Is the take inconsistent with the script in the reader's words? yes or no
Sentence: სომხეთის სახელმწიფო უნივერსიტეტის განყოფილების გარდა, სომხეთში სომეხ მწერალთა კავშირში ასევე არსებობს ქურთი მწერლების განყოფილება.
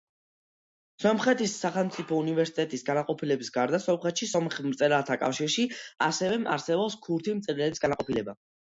no